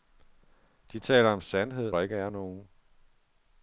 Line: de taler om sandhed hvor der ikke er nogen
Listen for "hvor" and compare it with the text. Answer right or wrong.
wrong